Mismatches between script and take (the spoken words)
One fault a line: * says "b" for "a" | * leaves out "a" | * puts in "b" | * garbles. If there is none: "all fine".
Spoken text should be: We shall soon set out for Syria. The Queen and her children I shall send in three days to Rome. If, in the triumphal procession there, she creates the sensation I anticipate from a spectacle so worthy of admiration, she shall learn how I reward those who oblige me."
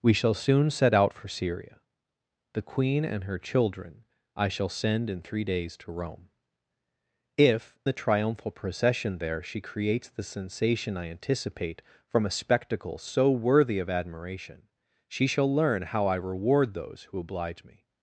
* leaves out "in"